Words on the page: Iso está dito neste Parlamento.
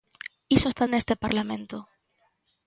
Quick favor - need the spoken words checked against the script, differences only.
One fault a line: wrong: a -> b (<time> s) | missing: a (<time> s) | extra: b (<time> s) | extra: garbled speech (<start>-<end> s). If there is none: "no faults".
missing: dito (0.8 s)